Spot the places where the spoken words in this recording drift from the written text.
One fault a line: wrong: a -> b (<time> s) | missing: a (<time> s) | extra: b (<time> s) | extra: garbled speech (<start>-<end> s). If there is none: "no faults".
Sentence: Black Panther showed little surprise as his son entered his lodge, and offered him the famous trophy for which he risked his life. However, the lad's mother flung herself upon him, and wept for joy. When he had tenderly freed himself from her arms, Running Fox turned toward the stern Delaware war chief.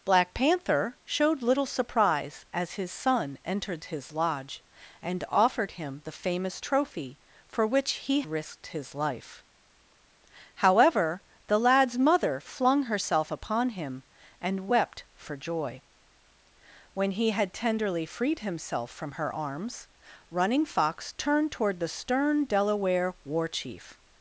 no faults